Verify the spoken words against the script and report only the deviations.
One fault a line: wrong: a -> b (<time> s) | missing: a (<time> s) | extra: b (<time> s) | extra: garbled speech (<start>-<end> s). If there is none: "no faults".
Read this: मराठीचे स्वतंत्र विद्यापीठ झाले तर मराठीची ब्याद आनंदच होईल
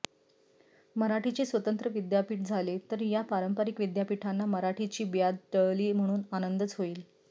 extra: या पारंपरिक विद्यापीठांना (3.0 s)
extra: टळली म्हणून (5.5 s)